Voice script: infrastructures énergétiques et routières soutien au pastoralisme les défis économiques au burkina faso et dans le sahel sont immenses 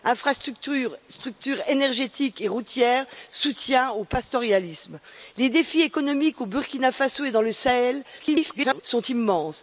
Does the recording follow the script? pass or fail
fail